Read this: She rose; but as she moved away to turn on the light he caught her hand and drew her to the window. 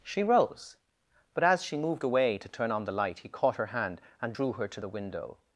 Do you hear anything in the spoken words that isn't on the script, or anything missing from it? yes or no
no